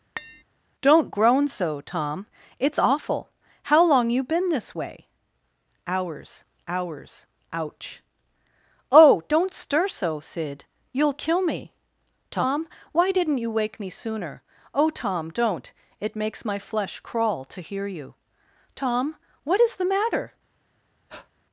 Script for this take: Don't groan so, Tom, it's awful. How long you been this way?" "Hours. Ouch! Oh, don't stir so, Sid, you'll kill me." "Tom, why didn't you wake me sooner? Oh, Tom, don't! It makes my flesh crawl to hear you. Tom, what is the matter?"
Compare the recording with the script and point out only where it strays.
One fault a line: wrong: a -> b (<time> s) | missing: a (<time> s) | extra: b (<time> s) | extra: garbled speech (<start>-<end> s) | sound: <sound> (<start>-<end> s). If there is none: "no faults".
sound: tap (0.2-0.4 s)
extra: hours (6.7 s)
sound: breath (21.1-21.3 s)